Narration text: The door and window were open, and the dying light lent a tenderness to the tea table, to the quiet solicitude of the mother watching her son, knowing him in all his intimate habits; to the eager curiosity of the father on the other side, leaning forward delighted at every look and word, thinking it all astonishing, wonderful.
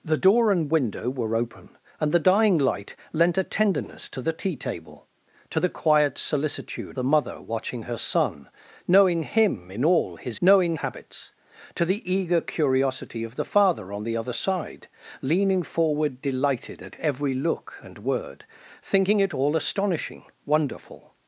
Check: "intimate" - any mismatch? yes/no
yes